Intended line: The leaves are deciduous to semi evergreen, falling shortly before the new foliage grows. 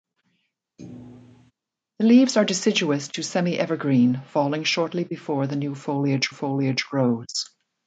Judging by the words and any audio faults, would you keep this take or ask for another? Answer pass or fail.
fail